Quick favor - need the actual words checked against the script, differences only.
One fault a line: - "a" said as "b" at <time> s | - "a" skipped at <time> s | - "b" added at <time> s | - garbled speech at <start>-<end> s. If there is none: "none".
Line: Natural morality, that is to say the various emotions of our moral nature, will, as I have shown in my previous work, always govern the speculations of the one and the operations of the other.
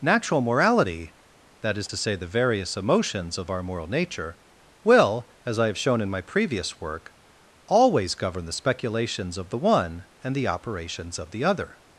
none